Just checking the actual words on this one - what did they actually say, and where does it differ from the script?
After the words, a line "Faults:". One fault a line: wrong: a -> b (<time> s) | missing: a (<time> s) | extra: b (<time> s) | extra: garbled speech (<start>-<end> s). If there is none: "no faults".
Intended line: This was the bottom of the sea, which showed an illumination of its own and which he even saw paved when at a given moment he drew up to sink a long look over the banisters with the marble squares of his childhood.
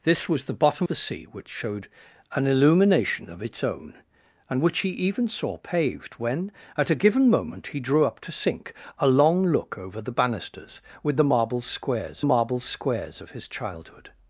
This was the bottom the sea, which showed an illumination of its own and which he even saw paved when at a given moment he drew up to sink a long look over the banisters with the marble squares marble squares of his childhood.
Faults:
missing: of (0.9 s)
extra: marble squares (12.2 s)